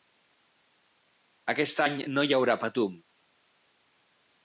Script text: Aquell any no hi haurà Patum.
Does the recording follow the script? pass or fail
fail